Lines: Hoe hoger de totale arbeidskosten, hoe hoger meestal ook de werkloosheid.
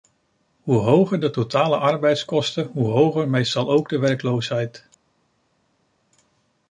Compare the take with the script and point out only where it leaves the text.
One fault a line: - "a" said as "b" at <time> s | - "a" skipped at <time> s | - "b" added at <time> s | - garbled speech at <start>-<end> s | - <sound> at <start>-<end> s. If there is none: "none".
none